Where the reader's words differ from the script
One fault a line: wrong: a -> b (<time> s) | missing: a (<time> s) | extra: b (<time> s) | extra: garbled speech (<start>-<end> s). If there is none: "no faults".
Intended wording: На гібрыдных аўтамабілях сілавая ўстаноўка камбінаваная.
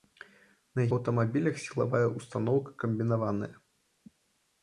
missing: гібрыдных (0.8 s)